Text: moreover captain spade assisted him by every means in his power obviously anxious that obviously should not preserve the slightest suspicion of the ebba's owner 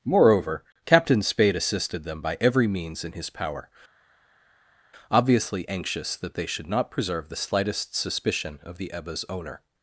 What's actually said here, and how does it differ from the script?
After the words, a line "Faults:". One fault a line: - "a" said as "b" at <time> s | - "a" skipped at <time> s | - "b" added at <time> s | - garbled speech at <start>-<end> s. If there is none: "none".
moreover captain spade assisted them by every means in his power obviously anxious that they should not preserve the slightest suspicion of the ebba's owner
Faults:
- "him" said as "them" at 2.0 s
- "obviously" said as "they" at 6.3 s